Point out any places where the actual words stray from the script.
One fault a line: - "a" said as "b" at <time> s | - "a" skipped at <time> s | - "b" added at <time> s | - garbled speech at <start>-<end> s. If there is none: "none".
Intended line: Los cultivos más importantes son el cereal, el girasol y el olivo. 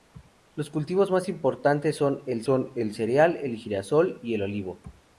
- "son el" added at 2.4 s